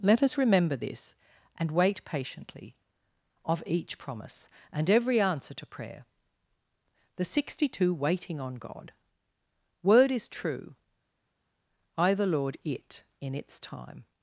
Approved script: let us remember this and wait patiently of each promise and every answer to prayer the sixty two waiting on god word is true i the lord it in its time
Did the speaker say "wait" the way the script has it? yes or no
yes